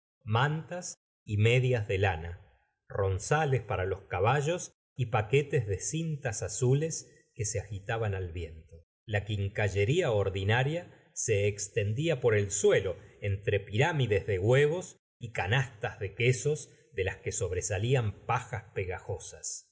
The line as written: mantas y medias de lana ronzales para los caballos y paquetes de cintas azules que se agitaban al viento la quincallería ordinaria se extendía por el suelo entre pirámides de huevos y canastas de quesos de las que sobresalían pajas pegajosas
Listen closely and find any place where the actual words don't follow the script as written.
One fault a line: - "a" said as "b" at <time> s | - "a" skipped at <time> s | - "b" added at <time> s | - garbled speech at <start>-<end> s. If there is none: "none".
none